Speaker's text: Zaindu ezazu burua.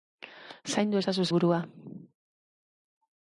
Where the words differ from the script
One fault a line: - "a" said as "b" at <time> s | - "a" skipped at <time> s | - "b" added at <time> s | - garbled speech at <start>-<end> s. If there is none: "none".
none